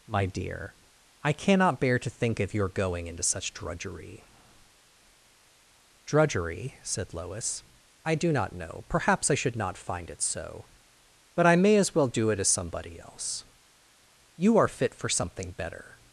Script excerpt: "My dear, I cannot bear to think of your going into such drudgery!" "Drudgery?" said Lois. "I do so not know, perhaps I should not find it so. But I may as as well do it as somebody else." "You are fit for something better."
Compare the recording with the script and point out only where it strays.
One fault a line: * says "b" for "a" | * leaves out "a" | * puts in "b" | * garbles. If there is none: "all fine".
* leaves out "so"
* leaves out "as"